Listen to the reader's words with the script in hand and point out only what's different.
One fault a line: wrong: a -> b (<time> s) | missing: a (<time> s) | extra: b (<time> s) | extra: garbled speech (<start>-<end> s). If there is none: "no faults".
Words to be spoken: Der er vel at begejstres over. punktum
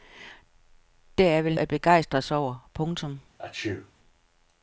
no faults